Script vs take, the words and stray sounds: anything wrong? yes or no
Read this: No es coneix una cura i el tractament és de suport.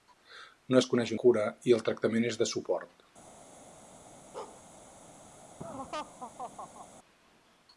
yes